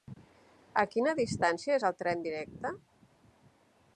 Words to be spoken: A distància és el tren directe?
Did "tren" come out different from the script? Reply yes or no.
no